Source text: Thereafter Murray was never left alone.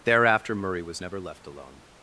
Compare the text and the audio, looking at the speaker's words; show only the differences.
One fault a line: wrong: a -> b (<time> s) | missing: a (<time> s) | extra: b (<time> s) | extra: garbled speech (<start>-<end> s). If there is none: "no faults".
no faults